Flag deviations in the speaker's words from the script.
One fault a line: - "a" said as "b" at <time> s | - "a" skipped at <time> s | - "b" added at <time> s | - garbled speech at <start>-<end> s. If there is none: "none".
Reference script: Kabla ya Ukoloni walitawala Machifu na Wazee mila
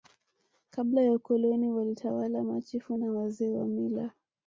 - "wa" added at 3.5 s